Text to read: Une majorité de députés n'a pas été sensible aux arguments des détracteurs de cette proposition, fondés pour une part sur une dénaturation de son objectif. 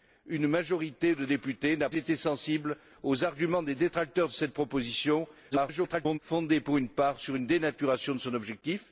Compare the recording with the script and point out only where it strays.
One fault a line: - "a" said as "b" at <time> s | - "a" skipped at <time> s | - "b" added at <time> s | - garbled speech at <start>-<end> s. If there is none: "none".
- "pas" skipped at 1.9 s
- garbled speech at 5.5-6.2 s